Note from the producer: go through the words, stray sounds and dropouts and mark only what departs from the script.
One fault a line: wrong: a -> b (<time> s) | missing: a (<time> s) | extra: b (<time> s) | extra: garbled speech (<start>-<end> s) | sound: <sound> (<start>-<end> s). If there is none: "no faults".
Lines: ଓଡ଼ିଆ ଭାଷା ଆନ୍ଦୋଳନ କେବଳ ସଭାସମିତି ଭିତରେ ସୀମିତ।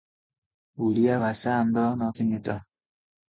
missing: କେବଳ ସଭାସମିତି ଭିତରେ (2.1 s)